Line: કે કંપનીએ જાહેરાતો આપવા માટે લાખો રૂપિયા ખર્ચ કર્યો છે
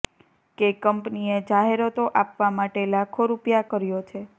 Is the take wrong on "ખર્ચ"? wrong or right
wrong